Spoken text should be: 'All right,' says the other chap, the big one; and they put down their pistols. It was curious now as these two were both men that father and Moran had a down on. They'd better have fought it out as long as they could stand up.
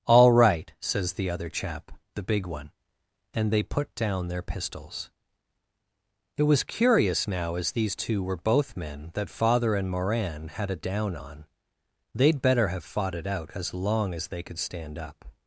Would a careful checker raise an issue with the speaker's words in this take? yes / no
no